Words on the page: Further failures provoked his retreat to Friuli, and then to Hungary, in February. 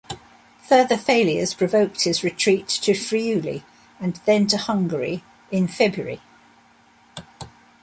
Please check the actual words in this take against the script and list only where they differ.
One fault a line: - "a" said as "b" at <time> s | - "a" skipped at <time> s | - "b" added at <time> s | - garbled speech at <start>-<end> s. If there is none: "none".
none